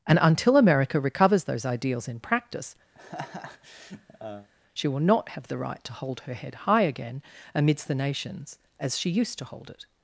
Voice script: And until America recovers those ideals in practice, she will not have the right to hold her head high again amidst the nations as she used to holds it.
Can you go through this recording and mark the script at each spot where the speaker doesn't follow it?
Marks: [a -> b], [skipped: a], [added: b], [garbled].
And until America recovers those ideals in practice, she will not have the right to hold her head high again amidst the nations as she used to [holds -> hold] it.